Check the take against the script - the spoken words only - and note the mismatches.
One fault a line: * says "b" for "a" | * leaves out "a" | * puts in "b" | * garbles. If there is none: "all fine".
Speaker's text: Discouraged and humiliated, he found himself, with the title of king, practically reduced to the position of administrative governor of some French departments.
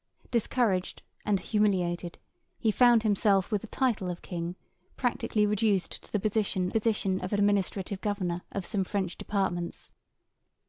* puts in "position"